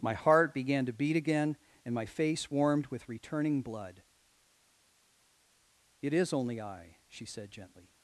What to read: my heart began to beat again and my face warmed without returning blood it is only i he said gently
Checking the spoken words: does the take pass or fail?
fail